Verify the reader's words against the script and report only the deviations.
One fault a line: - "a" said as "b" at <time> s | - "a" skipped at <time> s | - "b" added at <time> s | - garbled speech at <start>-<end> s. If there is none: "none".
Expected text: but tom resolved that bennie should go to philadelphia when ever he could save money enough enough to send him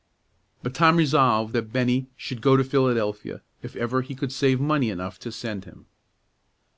- "when" said as "if" at 3.6 s
- "enough" skipped at 5.2 s